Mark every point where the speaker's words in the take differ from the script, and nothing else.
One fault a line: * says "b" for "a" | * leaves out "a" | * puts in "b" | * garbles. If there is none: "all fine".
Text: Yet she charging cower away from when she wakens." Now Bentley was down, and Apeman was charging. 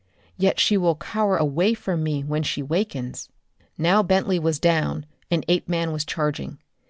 * says "will" for "charging"
* puts in "me"